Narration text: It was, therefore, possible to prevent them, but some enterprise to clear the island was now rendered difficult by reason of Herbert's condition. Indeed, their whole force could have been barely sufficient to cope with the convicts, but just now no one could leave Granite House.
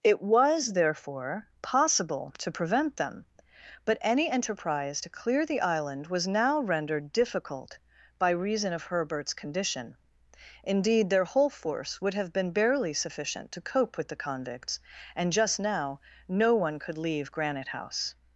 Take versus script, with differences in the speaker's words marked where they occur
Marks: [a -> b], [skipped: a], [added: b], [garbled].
It was, therefore, possible to prevent them, but [some -> any] enterprise to clear the island was now rendered difficult by reason of Herbert's condition. Indeed, their whole force [could -> would] have been barely sufficient to cope with the convicts, [but -> and] just now no one could leave Granite House.